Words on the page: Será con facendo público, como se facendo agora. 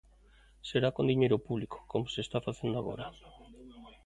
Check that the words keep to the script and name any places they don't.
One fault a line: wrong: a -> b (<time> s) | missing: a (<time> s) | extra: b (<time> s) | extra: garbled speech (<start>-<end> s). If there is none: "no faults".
wrong: facendo -> diñeiro (1.1 s)
extra: está (2.2 s)